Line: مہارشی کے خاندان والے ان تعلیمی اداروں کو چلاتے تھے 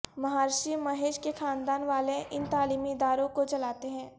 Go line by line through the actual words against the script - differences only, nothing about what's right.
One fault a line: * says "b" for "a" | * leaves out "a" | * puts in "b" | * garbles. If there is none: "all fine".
* puts in "مہیش"
* says "ہیں" for "تھے"